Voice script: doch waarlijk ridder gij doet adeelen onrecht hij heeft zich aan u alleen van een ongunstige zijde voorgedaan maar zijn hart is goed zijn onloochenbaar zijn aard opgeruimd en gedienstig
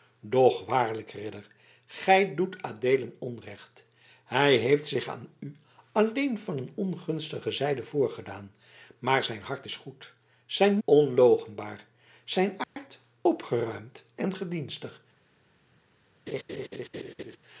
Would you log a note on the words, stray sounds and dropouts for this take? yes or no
yes